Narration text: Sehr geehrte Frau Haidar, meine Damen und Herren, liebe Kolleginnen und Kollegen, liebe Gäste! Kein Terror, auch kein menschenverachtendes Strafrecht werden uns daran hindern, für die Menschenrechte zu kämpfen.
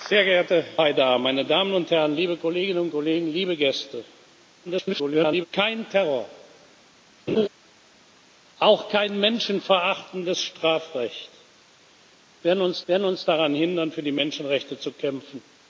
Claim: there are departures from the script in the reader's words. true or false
true